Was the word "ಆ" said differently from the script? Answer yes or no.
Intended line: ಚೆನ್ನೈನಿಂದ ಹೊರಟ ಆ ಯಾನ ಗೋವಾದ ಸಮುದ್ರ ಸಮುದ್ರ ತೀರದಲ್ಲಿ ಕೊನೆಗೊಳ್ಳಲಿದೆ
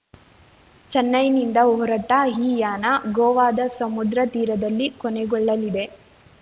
yes